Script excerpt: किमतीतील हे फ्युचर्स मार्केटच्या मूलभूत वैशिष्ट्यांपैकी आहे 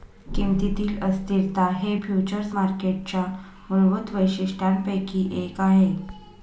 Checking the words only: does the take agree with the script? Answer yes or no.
no